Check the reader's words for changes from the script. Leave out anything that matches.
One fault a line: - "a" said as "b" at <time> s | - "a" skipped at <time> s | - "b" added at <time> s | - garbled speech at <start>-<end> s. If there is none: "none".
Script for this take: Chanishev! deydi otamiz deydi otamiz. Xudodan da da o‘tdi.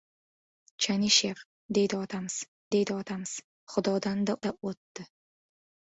none